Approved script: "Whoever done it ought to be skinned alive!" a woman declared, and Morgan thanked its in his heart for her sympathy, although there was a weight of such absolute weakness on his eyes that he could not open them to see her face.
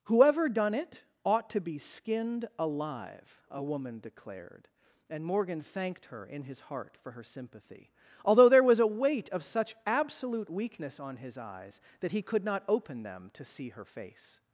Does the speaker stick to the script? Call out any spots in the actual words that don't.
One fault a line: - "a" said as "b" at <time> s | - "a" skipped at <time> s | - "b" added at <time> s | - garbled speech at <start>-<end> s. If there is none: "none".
- "its" said as "her" at 6.1 s